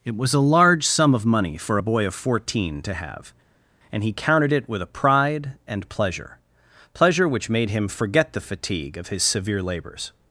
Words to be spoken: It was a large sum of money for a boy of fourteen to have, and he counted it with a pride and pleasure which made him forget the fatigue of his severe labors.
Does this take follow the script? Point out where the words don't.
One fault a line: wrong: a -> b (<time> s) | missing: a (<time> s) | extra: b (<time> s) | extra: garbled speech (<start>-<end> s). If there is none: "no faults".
extra: pleasure (6.9 s)